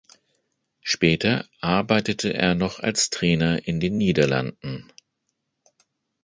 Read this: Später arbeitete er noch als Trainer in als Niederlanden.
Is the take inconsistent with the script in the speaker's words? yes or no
yes